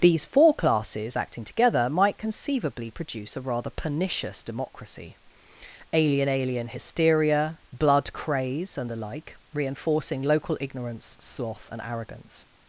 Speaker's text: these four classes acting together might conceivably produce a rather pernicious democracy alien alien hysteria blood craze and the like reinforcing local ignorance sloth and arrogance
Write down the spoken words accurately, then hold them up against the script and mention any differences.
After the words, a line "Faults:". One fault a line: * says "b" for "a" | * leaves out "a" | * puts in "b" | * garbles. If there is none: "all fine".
these four classes acting together might conceivably produce a rather pernicious democracy alien alien hysteria blood craze and the like reinforcing local ignorance sloth and arrogance
Faults:
all fine